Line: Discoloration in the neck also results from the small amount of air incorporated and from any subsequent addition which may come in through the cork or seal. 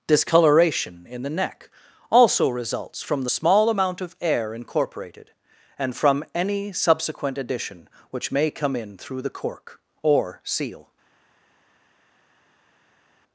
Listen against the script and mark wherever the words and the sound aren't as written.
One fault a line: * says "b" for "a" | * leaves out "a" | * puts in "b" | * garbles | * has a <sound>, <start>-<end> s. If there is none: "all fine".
all fine